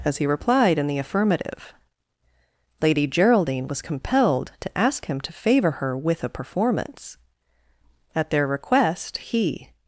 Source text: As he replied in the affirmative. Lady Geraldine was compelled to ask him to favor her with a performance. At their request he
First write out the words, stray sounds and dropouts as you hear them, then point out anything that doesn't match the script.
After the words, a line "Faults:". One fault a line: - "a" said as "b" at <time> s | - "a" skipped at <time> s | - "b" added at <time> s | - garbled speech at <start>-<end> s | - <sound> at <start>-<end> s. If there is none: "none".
As he replied in the affirmative. Lady Geraldine was compelled to ask him to favor her with a performance. At their request he
Faults:
none